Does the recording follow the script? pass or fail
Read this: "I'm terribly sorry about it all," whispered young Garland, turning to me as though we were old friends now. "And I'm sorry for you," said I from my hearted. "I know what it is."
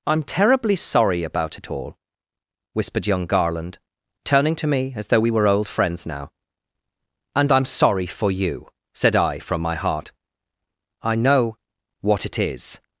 fail